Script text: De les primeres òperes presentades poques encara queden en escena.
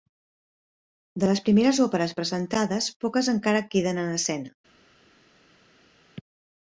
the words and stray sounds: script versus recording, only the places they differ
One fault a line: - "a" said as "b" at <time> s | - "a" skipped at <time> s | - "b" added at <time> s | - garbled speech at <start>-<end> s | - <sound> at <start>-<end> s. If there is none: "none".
none